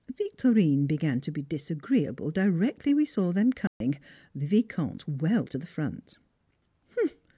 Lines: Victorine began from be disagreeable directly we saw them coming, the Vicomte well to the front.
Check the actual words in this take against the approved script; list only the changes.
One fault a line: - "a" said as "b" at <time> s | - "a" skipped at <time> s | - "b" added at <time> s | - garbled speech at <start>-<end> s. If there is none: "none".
- "from" said as "to" at 1.2 s